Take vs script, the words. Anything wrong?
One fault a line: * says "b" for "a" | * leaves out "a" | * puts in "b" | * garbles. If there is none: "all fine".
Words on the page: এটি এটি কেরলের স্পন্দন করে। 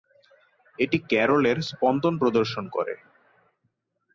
* leaves out "এটি"
* puts in "প্রদর্শন"